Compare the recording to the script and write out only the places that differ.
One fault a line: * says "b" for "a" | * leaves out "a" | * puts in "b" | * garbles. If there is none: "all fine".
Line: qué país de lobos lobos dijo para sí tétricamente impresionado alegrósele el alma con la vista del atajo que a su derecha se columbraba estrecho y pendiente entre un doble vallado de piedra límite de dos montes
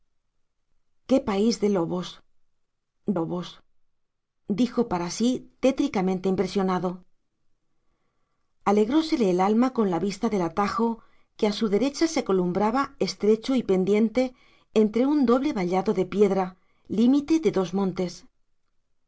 all fine